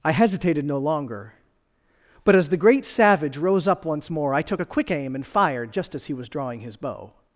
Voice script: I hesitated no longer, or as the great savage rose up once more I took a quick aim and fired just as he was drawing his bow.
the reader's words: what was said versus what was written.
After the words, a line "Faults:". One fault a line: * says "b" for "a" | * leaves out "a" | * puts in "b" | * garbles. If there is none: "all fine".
I hesitated no longer, but as the great savage rose up once more I took a quick aim and fired just as he was drawing his bow.
Faults:
* says "but" for "or"